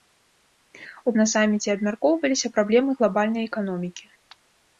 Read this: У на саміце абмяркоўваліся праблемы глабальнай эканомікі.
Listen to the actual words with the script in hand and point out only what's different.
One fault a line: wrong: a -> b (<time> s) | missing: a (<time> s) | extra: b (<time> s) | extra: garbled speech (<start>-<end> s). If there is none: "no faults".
no faults